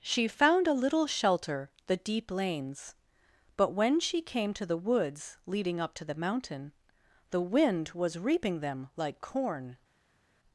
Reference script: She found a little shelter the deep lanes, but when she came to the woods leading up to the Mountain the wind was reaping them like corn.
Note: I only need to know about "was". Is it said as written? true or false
true